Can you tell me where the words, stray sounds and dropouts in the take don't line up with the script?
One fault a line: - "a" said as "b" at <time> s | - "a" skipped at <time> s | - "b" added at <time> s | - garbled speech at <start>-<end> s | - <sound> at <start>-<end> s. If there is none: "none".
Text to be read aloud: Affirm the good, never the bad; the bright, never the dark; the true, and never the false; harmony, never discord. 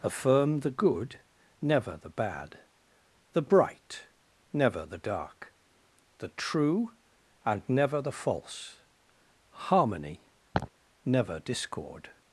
- laugh at 10.5-10.7 s